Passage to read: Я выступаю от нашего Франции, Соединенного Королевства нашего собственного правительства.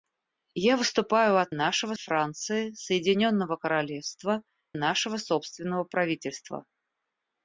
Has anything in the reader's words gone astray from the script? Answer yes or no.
no